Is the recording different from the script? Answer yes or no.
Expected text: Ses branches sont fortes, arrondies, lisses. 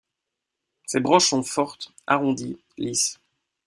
no